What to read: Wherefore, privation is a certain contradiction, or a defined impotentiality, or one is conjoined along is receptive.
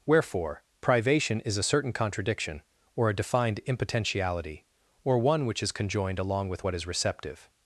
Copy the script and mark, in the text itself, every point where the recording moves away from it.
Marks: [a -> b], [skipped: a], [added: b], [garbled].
Wherefore, privation is a certain contradiction, or a defined impotentiality, or one [added: which] is conjoined along [added: with what] is receptive.